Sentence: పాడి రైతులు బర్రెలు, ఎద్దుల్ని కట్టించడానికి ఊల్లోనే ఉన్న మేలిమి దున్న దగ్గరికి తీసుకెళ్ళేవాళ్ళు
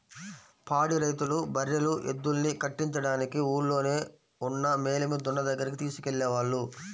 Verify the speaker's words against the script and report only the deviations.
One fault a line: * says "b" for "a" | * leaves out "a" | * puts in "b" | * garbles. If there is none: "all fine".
all fine